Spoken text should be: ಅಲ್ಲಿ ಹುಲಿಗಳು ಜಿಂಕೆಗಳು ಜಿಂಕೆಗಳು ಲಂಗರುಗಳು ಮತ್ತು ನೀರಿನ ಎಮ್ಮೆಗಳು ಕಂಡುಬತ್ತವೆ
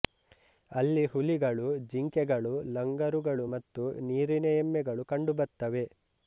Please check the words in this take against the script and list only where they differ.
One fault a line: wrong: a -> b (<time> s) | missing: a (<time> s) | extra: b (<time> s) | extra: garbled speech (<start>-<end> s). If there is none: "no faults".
missing: ಜಿಂಕೆಗಳು (2.5 s)